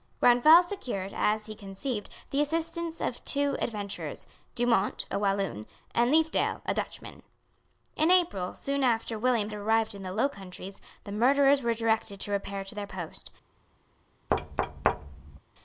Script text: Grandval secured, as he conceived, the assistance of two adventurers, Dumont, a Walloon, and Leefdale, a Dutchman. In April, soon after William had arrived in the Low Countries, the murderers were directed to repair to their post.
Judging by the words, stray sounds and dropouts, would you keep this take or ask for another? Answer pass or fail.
fail